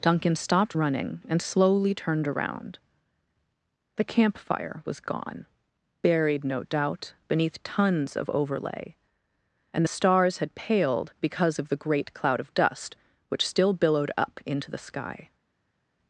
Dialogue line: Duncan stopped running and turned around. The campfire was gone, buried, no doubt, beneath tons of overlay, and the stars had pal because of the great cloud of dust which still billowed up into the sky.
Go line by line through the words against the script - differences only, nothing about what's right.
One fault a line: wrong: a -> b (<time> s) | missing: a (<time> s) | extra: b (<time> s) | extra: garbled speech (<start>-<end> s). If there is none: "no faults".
extra: slowly (1.4 s)
wrong: pal -> paled (10.6 s)